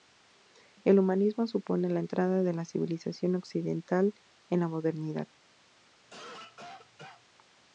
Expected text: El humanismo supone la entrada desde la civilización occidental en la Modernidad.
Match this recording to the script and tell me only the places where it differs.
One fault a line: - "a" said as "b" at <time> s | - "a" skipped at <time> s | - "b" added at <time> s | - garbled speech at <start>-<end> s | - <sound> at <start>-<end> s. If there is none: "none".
- "desde" said as "de" at 2.4 s
- cough at 6.0-7.3 s